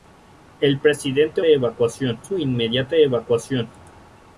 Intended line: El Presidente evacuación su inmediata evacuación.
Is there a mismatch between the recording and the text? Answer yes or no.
no